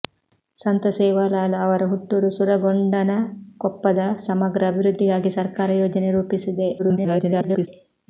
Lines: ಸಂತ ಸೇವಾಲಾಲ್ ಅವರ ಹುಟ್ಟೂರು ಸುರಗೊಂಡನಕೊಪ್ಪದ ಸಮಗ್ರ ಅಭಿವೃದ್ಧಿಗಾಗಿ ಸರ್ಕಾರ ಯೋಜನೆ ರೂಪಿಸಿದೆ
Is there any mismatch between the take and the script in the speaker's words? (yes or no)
yes